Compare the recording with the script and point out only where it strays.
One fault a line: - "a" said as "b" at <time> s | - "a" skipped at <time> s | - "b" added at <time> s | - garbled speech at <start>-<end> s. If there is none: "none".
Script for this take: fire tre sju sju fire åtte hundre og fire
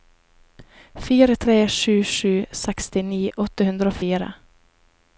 - "fire" said as "sekstini" at 2.6 s